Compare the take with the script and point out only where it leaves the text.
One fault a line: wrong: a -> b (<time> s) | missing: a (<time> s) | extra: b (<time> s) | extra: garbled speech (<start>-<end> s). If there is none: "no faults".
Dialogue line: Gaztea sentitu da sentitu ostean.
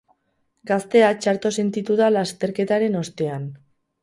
extra: txarto (1.2 s)
wrong: sentitu -> lasterketaren (2.2 s)